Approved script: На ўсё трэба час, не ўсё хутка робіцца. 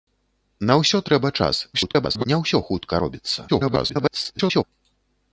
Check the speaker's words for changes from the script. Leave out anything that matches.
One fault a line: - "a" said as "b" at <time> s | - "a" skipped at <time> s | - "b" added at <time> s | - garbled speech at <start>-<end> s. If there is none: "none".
- garbled speech at 1.7-2.2 s
- garbled speech at 3.5-4.6 s